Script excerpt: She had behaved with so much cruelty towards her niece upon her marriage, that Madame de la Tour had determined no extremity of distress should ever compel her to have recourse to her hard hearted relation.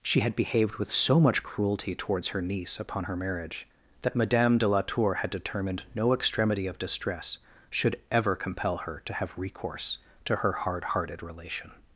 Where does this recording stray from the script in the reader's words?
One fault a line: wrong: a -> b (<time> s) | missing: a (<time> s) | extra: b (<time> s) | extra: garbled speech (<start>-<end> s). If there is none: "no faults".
no faults